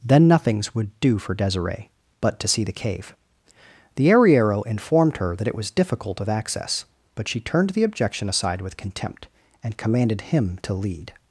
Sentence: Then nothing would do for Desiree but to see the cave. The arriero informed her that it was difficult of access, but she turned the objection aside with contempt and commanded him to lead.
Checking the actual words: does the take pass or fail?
fail